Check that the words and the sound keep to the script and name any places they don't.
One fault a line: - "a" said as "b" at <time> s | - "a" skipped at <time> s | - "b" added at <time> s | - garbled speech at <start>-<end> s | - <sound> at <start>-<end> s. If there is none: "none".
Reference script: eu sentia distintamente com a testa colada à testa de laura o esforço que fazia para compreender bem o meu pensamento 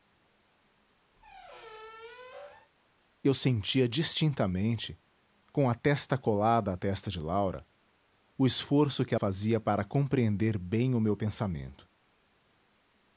- squeak at 1.2-2.7 s